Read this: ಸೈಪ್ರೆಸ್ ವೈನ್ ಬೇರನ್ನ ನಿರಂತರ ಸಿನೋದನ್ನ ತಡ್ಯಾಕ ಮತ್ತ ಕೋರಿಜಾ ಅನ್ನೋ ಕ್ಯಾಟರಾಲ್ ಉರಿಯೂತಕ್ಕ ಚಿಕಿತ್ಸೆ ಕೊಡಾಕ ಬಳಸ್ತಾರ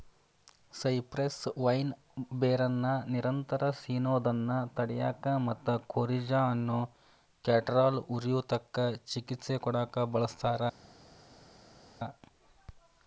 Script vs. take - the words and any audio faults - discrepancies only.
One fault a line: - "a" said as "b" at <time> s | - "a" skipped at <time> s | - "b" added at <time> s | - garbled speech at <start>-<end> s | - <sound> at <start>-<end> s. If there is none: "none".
none